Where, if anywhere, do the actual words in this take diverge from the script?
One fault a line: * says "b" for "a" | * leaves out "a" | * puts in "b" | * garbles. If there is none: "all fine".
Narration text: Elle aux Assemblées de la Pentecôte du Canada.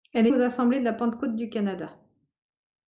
all fine